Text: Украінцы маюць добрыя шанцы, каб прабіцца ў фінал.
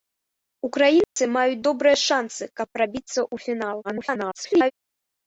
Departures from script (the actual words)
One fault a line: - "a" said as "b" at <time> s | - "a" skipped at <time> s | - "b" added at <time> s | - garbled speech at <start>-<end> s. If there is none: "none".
- garbled speech at 3.8-4.7 s